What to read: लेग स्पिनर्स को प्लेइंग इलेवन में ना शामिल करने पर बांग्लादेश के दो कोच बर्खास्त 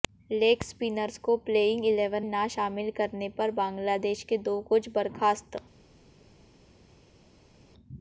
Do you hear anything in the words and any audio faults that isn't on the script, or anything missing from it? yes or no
yes